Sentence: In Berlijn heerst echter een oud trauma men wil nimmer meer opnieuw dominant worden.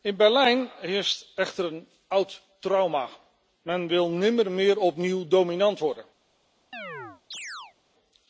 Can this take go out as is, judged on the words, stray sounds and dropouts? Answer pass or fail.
fail